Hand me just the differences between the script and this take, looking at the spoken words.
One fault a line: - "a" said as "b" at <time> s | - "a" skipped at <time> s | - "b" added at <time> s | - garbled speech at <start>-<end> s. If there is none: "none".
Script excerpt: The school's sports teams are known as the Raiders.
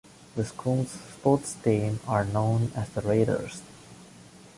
none